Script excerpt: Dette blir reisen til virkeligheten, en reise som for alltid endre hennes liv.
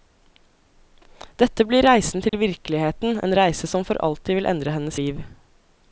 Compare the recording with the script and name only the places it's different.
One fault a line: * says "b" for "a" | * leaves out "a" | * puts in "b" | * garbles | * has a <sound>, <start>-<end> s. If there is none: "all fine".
* has a dropout, 2.3-2.3 s
* puts in "vil"